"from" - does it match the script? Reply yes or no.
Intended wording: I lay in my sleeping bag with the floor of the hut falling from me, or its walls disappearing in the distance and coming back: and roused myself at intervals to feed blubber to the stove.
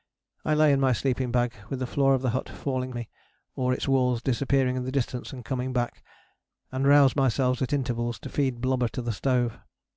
no